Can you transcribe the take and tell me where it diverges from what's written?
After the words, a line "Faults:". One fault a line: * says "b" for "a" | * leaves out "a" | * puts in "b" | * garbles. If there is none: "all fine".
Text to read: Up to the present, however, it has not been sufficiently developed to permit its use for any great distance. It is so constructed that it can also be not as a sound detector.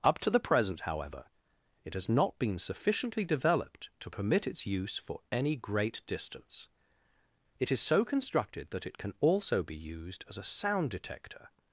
Up to the present, however, it has not been sufficiently developed to permit its use for any great distance. It is so constructed that it can also be used as a sound detector.
Faults:
* says "used" for "not"